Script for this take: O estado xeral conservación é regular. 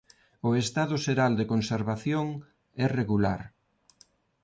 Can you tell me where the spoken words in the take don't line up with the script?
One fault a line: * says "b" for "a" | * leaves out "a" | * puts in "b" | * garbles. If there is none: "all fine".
* puts in "de"